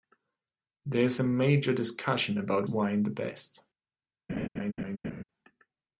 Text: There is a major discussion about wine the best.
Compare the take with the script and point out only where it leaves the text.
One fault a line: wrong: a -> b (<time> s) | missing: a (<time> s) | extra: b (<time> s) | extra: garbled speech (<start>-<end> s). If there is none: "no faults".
no faults